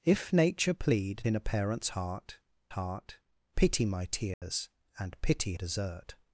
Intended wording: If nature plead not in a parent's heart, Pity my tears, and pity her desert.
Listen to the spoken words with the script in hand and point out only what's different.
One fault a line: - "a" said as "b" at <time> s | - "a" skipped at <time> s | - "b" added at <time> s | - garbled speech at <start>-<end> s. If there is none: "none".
- "not" skipped at 1.2 s
- "heart" added at 2.7 s
- "her" skipped at 5.5 s